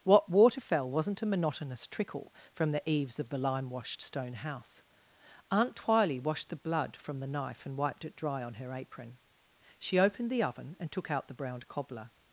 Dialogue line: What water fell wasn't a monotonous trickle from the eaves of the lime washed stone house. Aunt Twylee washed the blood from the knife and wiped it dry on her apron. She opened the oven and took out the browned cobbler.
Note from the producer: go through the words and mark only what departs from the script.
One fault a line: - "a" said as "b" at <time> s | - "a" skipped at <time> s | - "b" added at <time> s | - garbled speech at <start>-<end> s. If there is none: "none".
none